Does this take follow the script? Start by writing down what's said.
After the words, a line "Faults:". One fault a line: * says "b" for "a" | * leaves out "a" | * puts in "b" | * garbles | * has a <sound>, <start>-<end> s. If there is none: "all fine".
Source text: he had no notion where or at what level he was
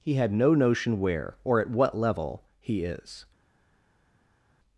he had no notion where or at what level he is
Faults:
* says "is" for "was"